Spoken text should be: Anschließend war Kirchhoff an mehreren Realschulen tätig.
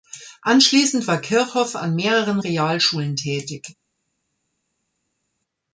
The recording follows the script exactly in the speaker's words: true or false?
true